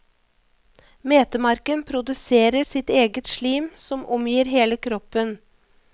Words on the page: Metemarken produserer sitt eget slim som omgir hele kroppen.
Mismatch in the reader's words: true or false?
false